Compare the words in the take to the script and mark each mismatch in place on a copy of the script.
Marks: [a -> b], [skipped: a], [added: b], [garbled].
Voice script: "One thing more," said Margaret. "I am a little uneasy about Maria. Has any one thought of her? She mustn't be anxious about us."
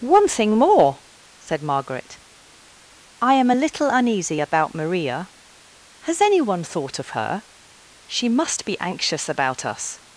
"One thing more," said Margaret. "I am a little uneasy about Maria. Has any one thought of her? She [mustn't -> must] be anxious about us."